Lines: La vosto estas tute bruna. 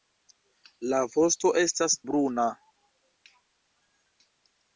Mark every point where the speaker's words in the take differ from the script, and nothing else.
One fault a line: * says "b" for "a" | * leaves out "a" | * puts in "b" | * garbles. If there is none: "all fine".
* leaves out "tute"